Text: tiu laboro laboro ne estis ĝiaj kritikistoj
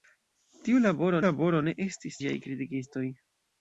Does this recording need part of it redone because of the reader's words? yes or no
no